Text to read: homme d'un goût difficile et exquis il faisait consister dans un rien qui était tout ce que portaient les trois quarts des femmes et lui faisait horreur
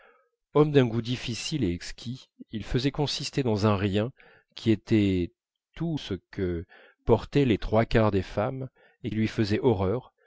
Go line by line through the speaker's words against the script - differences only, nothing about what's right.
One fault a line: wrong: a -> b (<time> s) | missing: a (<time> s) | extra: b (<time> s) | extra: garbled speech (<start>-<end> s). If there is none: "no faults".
no faults